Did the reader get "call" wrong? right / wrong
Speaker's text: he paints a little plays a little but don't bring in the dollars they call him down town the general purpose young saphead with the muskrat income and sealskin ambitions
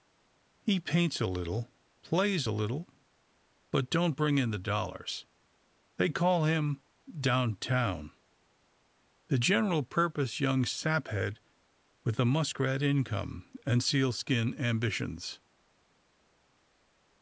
right